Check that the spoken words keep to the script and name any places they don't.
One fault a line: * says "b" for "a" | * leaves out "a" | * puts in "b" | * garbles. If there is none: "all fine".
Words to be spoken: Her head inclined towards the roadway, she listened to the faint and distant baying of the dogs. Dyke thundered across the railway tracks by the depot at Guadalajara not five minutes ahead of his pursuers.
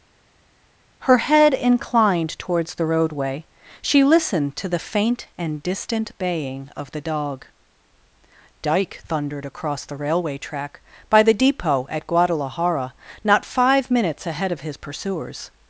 * says "dog" for "dogs"
* says "track" for "tracks"